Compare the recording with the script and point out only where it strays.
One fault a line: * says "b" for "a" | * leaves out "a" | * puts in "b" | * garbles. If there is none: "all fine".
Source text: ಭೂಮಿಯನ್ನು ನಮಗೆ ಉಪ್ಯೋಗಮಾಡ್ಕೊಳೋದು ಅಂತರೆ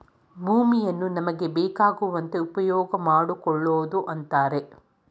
* puts in "ಬೇಕಾಗುವಂತೆ"